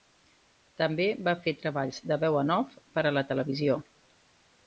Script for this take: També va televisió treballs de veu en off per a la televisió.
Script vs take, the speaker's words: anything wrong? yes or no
yes